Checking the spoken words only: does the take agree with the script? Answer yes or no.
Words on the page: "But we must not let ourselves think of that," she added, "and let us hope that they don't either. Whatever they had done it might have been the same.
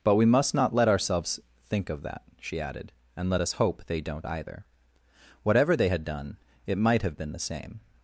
no